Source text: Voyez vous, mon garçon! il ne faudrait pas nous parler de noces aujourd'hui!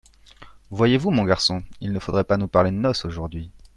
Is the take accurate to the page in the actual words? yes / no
yes